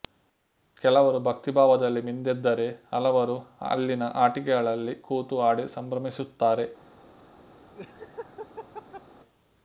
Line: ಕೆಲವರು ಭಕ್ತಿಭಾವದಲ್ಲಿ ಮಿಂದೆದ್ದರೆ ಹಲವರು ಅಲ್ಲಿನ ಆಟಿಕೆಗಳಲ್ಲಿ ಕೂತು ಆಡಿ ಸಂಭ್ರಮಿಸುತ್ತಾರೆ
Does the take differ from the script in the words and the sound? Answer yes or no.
yes